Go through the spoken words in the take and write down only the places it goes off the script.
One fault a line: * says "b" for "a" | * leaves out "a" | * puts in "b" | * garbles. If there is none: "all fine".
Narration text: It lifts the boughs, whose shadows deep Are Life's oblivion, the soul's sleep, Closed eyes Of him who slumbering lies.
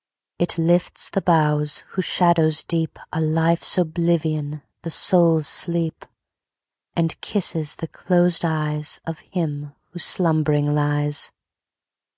* puts in "And kisses the"